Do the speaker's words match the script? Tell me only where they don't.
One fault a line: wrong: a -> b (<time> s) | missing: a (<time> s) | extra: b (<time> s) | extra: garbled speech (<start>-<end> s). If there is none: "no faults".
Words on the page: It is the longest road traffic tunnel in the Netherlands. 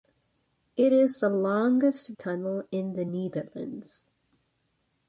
missing: road traffic (2.2 s)